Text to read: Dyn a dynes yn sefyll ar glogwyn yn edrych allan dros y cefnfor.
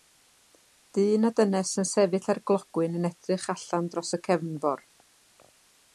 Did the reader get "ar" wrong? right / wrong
right